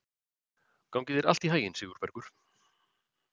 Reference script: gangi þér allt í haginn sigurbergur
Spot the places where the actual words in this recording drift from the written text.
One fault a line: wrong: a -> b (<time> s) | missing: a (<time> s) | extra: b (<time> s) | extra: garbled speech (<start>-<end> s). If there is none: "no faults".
no faults